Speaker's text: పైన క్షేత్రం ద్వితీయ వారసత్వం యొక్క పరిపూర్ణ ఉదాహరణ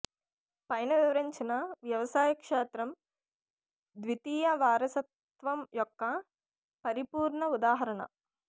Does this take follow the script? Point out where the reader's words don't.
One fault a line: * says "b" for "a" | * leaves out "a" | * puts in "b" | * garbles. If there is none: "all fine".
* puts in "వివరించిన వ్యవసాయ"